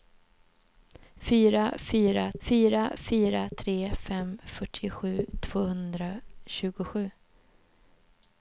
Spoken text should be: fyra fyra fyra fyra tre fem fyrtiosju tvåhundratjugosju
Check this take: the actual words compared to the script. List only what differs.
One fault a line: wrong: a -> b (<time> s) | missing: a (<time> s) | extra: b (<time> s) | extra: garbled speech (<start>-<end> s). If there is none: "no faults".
no faults